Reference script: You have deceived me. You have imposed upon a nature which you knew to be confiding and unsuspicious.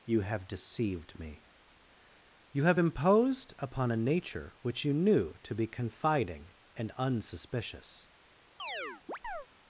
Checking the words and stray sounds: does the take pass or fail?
fail